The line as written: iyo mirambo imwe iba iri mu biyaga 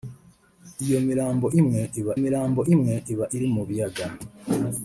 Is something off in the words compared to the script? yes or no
yes